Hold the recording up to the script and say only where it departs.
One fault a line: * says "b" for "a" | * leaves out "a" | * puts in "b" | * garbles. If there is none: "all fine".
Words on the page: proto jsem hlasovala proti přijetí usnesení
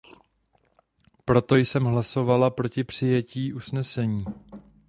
all fine